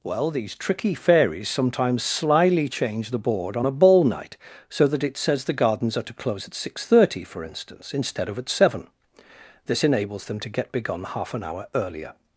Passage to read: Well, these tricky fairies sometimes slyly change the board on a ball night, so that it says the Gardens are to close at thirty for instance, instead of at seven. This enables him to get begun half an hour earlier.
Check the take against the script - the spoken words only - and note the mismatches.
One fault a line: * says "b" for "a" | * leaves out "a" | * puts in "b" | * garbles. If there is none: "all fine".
* puts in "six"
* says "them" for "him"